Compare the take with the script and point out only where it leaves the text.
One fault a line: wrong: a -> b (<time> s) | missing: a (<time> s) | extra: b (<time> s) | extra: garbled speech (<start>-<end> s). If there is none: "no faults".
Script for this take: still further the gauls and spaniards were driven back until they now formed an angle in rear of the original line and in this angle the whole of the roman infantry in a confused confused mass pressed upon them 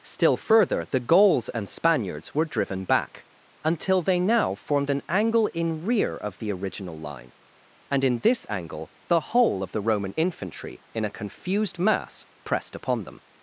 missing: confused (11.8 s)